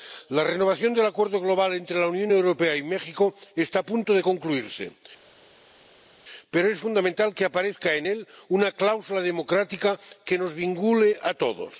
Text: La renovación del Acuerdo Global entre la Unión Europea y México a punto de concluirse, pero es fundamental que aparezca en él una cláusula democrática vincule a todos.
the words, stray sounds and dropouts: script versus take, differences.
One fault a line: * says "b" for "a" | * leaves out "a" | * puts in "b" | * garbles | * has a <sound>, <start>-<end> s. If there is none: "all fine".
* puts in "está"
* puts in "que nos"